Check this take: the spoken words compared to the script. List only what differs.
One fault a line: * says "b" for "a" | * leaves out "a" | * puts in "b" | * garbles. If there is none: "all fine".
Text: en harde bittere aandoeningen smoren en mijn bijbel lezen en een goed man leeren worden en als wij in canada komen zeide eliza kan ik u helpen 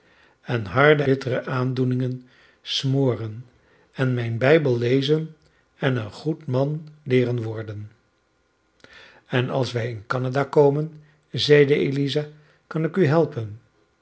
all fine